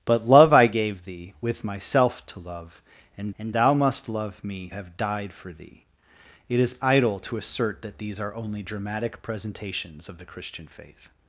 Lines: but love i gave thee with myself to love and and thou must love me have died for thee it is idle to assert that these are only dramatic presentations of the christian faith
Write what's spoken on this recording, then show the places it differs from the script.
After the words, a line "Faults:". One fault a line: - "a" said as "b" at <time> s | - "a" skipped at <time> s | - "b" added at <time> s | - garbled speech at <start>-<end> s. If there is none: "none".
but love i gave thee with myself to love and and thou must love me have died for thee it is idle to assert that these are only dramatic presentations of the christian faith
Faults:
none